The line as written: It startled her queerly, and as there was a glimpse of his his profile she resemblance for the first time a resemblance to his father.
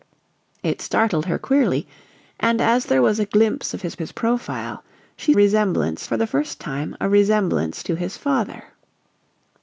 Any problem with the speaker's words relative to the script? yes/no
no